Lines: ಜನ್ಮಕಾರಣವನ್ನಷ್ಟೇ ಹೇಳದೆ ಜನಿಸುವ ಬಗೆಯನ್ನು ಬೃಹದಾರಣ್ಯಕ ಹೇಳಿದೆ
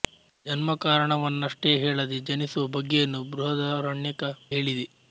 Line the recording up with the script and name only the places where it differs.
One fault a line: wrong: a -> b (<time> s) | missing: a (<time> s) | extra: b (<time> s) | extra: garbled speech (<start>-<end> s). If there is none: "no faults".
no faults